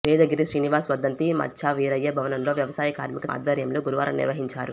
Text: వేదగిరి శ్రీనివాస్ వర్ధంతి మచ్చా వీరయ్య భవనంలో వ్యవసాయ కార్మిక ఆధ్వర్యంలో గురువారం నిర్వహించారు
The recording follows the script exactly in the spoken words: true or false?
true